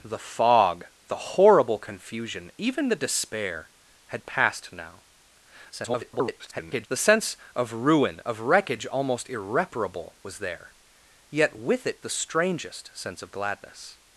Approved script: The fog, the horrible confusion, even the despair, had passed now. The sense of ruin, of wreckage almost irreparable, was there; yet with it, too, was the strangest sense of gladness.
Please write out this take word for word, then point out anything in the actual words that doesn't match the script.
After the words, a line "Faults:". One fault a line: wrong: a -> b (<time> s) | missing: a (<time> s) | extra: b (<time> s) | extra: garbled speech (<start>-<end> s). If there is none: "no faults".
The fog, the horrible confusion, even the despair, had passed now. [garbled] The sense of ruin, of wreckage almost irreparable, was there; yet with it, the strangest sense of gladness.
Faults:
extra: garbled speech (5.7-6.9 s)
missing: too was (12.0 s)